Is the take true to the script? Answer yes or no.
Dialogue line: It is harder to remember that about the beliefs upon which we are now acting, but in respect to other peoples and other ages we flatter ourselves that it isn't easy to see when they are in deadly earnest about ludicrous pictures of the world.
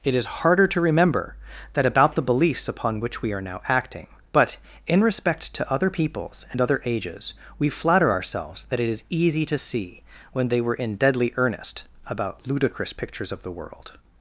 no